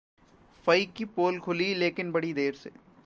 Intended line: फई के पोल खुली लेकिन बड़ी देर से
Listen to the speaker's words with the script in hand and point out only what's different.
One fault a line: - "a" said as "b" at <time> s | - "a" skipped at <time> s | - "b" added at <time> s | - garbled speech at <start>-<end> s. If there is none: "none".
- "के" said as "की" at 0.8 s